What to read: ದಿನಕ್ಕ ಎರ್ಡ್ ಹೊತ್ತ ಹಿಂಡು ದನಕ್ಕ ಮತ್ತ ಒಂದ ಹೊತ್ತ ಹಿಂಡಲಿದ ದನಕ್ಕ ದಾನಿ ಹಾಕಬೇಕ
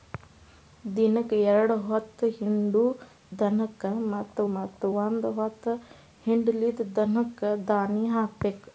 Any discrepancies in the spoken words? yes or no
yes